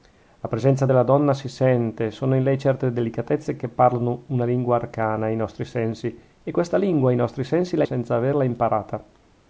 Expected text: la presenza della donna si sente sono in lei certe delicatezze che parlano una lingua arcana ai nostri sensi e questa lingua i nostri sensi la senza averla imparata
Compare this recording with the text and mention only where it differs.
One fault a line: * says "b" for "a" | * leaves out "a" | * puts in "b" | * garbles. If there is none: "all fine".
all fine